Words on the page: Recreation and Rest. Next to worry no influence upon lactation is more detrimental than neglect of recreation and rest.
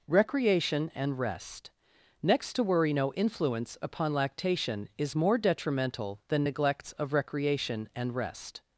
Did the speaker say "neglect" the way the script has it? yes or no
no